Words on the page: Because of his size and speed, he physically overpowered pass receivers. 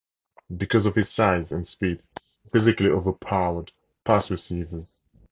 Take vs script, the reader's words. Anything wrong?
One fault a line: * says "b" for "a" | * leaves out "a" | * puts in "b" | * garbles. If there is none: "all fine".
all fine